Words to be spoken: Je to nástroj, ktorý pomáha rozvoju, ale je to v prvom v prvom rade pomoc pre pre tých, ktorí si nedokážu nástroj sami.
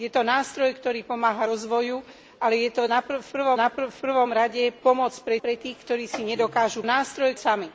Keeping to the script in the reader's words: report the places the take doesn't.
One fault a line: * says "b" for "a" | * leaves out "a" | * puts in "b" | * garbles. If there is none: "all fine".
all fine